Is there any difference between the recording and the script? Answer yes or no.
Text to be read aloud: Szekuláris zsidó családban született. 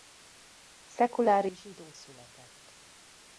yes